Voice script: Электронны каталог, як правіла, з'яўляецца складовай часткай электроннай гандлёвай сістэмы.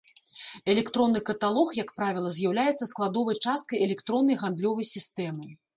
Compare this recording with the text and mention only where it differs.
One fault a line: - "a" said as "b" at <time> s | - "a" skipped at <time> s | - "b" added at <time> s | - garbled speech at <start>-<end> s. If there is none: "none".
none